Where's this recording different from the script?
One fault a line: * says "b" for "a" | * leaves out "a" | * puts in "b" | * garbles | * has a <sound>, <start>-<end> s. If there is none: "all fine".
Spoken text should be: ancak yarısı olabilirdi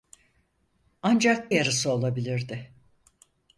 all fine